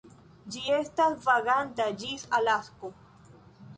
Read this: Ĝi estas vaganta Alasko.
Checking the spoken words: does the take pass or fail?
fail